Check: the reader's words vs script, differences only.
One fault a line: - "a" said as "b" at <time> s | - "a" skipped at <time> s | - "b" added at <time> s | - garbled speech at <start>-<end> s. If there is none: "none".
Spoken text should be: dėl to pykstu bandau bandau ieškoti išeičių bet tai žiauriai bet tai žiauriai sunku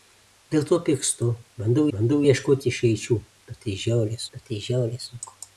none